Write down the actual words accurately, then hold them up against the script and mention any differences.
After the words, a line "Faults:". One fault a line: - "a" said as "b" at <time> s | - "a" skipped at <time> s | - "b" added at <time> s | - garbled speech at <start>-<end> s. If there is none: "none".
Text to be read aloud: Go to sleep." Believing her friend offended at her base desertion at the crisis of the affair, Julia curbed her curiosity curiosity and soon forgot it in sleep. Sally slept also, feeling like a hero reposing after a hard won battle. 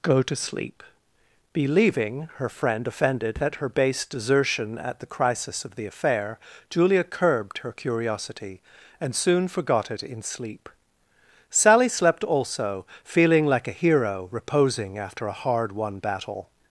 Go to sleep." Believing her friend offended at her base desertion at the crisis of the affair, Julia curbed her curiosity and soon forgot it in sleep. Sally slept also, feeling like a hero reposing after a hard won battle.
Faults:
- "curiosity" skipped at 8.6 s